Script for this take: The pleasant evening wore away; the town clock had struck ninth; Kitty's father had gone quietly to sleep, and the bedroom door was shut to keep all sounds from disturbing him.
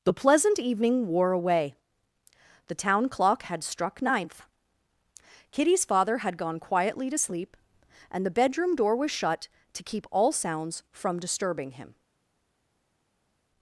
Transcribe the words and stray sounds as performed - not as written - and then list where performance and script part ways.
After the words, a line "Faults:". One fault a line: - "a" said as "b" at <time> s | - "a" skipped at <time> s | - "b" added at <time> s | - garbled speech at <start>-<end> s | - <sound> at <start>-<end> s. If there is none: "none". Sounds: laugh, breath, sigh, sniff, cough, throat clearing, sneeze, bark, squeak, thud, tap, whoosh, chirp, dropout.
The pleasant evening wore away; the town clock had struck ninth; Kitty's father had gone quietly to sleep, and the bedroom door was shut to keep all sounds from disturbing him.
Faults:
none